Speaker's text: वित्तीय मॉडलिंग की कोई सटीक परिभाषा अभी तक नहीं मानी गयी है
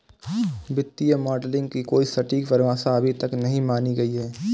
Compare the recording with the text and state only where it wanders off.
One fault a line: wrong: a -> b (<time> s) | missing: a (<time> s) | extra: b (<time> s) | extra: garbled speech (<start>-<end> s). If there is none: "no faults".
no faults